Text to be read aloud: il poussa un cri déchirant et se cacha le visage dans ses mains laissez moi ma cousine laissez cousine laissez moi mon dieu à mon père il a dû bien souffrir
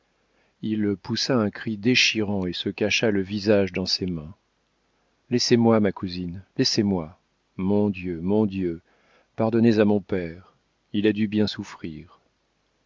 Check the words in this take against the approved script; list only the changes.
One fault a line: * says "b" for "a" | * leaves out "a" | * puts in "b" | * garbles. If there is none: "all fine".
* says "moi mon dieu" for "cousine laissez moi"
* puts in "pardonnez"